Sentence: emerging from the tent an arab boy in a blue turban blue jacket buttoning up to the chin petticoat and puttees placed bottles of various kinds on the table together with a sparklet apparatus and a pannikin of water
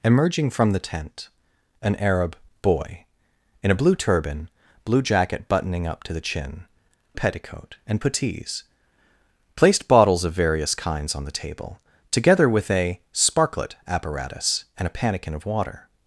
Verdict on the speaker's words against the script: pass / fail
pass